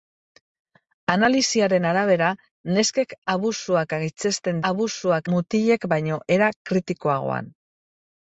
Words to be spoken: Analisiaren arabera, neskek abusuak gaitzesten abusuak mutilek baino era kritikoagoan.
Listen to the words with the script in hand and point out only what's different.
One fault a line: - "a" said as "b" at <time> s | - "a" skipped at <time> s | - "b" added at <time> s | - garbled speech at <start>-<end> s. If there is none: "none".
none